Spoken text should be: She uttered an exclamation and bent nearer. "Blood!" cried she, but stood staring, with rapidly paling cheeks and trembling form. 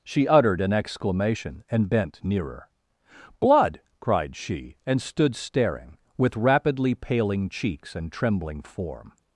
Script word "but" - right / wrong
wrong